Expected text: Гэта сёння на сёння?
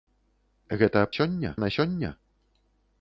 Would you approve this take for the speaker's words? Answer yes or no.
yes